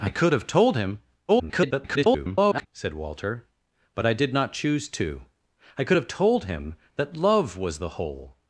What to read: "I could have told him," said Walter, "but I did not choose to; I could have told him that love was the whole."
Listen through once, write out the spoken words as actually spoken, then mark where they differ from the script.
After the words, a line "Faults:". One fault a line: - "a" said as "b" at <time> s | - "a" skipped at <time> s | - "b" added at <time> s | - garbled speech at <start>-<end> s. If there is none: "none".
"I could have told him," [garbled] said Walter, "but I did not choose to; I could have told him that love was the whole."
Faults:
- garbled speech at 1.3-2.7 s